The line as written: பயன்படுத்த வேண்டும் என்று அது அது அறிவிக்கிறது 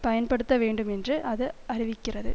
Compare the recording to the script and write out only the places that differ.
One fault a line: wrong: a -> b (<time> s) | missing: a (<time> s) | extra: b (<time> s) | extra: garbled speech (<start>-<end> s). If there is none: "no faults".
missing: அது (1.5 s)